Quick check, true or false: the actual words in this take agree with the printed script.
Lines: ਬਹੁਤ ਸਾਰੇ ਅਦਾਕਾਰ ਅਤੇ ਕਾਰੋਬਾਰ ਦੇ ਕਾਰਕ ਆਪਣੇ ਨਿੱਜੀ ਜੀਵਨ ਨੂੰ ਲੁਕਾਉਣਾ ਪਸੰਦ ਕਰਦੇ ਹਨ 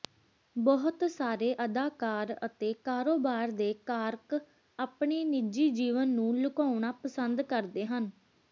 true